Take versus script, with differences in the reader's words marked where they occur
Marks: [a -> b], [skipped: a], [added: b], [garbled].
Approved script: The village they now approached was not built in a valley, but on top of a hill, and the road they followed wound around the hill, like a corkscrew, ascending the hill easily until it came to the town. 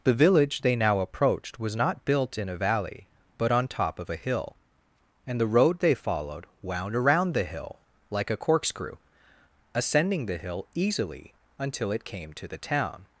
The village they now approached was not built in a valley, but on top of a hill, and the road they followed wound around the hill, like a corkscrew, ascending the hill easily until it came to the town.